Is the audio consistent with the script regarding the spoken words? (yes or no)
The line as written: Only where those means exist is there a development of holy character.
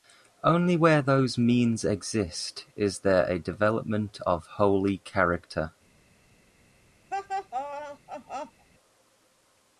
yes